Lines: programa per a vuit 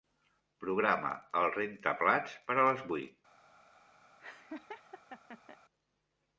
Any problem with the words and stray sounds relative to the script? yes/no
yes